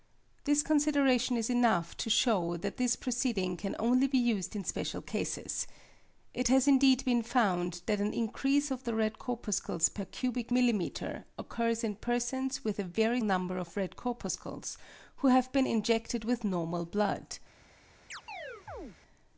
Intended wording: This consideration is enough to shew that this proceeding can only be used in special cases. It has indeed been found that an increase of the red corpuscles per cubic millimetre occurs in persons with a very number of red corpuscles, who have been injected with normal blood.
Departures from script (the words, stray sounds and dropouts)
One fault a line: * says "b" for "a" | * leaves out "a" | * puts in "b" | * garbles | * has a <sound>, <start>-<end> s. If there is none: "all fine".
* has a chirp, 18.1-19.0 s